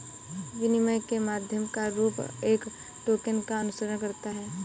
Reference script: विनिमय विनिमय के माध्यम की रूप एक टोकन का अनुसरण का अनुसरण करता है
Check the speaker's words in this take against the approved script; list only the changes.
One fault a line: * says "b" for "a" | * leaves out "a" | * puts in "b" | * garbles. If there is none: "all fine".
* leaves out "विनिमय"
* says "का" for "की"
* leaves out "का अनुसरण"